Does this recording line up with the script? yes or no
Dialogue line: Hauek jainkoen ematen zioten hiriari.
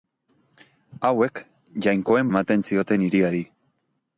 yes